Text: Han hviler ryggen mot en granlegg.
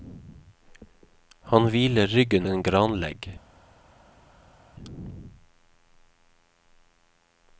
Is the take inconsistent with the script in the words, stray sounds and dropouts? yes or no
yes